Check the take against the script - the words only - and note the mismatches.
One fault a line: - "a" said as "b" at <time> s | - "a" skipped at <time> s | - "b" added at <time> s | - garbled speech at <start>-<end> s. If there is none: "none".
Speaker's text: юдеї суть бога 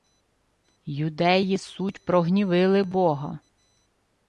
- "прогнівили" added at 2.0 s